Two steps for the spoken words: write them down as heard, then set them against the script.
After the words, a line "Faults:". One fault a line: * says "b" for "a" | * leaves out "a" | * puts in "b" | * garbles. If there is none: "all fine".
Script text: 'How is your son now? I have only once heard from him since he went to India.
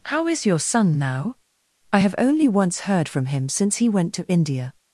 'How is your son now? I have only once heard from him since he went to India.
Faults:
all fine